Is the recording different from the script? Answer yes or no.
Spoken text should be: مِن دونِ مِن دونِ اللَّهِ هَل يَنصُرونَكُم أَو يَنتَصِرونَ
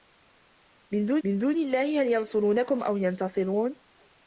no